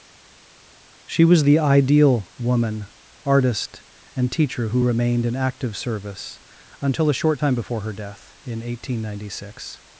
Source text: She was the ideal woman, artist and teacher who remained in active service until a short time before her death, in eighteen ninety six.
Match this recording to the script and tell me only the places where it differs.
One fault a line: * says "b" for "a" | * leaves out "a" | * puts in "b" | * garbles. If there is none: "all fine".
all fine